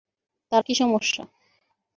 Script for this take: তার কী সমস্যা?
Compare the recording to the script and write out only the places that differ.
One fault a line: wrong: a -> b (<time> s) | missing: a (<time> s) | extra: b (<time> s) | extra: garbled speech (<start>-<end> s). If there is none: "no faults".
no faults